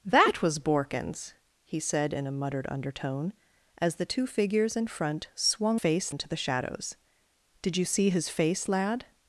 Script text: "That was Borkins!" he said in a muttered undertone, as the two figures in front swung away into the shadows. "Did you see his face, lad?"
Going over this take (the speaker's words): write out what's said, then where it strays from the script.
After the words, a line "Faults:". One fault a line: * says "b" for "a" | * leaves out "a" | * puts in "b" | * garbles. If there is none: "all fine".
"That was Borkins!" he said in a muttered undertone, as the two figures in front swung face into the shadows. "Did you see his face, lad?"
Faults:
* says "face" for "away"